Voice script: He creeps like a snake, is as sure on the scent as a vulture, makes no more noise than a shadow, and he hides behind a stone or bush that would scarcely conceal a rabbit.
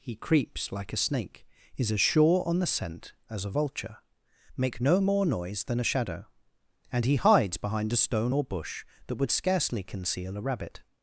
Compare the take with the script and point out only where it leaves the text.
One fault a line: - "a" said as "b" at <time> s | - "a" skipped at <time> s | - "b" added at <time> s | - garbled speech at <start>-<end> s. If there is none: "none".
- "makes" said as "make" at 4.5 s